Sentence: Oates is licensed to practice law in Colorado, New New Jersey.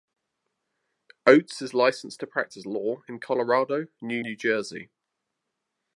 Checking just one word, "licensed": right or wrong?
right